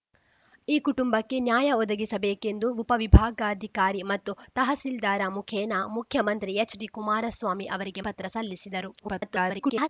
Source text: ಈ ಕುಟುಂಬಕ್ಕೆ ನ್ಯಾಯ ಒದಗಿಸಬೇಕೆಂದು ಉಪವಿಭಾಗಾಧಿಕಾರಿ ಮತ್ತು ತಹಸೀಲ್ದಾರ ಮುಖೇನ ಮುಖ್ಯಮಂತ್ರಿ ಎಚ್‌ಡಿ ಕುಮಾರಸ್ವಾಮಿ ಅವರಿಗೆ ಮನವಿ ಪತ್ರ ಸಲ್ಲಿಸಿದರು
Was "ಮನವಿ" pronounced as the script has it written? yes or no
no